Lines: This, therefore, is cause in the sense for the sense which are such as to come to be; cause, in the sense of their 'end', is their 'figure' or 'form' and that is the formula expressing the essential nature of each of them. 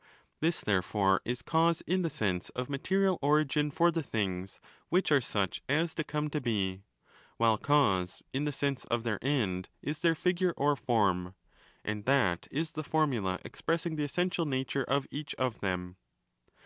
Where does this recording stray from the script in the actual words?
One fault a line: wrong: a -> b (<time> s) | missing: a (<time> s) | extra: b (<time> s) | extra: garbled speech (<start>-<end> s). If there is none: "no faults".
extra: of material origin (2.5 s)
wrong: sense -> things (4.0 s)
extra: while (7.4 s)